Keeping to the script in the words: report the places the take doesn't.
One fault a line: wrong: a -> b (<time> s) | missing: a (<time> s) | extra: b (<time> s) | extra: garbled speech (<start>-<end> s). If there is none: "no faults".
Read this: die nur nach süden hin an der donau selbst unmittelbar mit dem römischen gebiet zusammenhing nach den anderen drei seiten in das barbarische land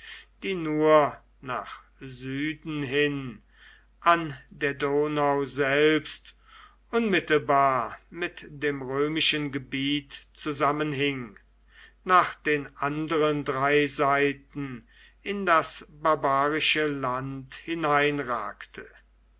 no faults